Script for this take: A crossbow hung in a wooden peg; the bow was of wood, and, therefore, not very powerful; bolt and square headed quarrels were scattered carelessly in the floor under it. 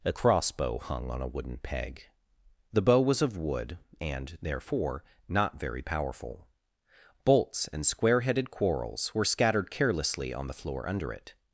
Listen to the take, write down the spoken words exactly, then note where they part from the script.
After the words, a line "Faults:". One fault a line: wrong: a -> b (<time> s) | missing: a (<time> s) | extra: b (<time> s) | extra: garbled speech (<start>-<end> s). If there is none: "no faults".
A crossbow hung on a wooden peg; the bow was of wood, and, therefore, not very powerful; bolts and square headed quarrels were scattered carelessly on the floor under it.
Faults:
wrong: in -> on (1.1 s)
wrong: bolt -> bolts (7.3 s)
wrong: in -> on (10.3 s)